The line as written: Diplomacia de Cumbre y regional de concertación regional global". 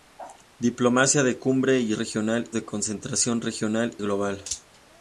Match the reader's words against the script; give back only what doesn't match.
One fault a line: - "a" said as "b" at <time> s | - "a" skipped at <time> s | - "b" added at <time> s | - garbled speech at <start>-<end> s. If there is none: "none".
none